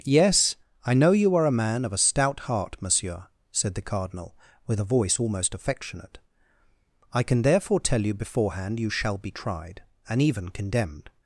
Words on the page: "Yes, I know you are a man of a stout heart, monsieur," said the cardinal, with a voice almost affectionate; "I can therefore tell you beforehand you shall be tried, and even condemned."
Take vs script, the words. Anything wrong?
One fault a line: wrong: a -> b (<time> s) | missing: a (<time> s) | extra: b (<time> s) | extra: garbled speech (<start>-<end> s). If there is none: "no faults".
no faults